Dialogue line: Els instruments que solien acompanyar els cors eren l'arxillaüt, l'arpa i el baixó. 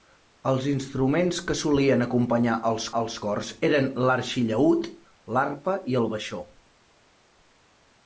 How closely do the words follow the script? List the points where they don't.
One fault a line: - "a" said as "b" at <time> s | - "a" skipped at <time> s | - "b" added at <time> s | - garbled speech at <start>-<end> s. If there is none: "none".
- "els" added at 3.0 s